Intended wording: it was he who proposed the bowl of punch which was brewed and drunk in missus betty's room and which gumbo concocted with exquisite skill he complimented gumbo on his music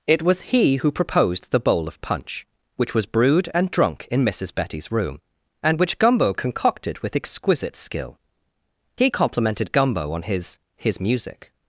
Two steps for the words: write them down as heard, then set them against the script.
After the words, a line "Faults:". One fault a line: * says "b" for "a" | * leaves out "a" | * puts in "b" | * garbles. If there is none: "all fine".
it was he who proposed the bowl of punch which was brewed and drunk in missus betty's room and which gumbo concocted with exquisite skill he complimented gumbo on his his music
Faults:
* puts in "his"